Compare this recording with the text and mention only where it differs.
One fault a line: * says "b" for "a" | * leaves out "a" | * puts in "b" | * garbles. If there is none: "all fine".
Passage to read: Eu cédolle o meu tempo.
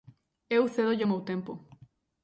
all fine